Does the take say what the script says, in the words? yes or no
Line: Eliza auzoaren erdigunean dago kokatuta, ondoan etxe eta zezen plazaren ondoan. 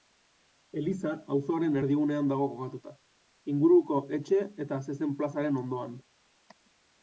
no